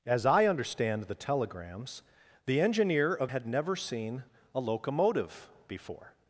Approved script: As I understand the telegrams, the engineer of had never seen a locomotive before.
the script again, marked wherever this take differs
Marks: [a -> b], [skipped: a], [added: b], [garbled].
As I understand the telegrams, the engineer of had never seen a locomotive before.